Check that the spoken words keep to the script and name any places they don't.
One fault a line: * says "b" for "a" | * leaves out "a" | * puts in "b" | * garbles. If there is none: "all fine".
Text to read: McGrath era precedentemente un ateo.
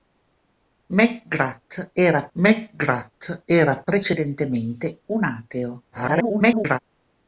* puts in "mcgrath era"
* garbles